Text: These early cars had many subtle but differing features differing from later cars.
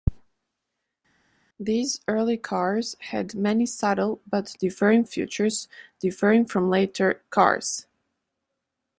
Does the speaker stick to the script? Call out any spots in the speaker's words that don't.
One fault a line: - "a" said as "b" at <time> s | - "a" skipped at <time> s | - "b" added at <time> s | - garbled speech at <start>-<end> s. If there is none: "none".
none